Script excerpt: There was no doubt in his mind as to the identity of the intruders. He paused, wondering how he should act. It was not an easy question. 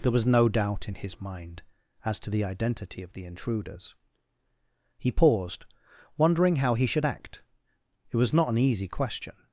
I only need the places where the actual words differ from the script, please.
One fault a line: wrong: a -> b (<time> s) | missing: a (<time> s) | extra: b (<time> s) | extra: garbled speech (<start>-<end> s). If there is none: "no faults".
no faults